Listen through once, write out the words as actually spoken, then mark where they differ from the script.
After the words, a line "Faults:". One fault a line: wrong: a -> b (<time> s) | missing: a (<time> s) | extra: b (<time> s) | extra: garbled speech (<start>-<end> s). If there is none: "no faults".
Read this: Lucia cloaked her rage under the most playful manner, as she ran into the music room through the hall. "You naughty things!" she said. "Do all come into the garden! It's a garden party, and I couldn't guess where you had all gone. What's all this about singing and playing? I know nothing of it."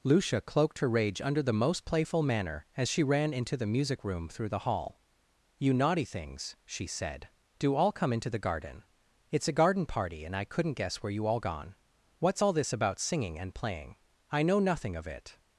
Lucia cloaked her rage under the most playful manner, as she ran into the music room through the hall. "You naughty things!" she said. "Do all come into the garden! It's a garden party, and I couldn't guess where you all gone. What's all this about singing and playing? I know nothing of it."
Faults:
missing: had (11.3 s)